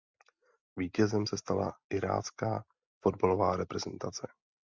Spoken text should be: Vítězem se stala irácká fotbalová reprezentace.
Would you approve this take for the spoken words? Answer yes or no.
yes